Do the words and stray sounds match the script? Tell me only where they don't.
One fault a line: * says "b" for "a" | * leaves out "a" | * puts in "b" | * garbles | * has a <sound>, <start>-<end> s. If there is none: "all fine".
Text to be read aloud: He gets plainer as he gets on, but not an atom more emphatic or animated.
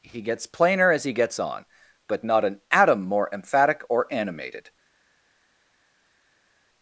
all fine